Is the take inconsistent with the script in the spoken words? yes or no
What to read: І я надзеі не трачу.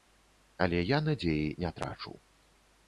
yes